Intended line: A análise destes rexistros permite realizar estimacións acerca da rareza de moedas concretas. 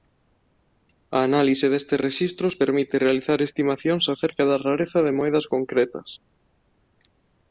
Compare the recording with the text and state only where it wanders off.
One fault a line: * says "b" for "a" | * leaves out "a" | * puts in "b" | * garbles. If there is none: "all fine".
all fine